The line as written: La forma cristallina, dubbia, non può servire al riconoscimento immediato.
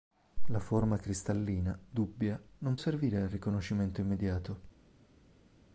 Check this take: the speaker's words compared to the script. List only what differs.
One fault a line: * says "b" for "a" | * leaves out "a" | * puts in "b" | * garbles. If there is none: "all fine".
* leaves out "può"